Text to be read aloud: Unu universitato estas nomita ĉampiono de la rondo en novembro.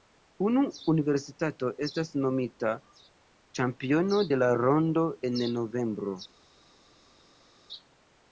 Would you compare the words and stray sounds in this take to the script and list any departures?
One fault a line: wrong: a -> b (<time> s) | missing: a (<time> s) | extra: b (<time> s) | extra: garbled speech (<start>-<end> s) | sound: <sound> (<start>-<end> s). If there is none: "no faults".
no faults